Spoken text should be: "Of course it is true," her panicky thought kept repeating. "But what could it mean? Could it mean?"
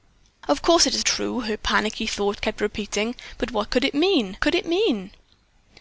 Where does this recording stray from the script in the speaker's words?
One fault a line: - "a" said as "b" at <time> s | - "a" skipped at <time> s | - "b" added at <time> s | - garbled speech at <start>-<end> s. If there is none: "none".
none